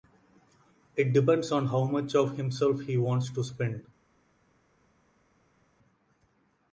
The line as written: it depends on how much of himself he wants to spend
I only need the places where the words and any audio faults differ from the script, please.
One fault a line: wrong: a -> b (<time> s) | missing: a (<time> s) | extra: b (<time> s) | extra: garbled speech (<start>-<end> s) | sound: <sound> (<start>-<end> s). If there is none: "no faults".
no faults